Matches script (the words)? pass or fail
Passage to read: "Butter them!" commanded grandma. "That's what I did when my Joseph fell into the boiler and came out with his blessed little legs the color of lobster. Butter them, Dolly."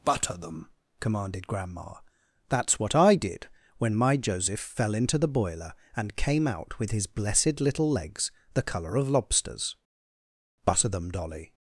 fail